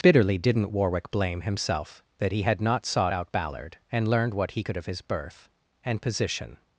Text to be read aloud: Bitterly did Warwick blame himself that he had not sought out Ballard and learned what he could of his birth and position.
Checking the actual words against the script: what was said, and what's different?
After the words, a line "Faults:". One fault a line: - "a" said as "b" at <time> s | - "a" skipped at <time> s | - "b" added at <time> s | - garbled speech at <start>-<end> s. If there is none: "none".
Bitterly didn't Warwick blame himself that he had not sought out Ballard and learned what he could of his birth and position.
Faults:
- "did" said as "didn't" at 0.4 s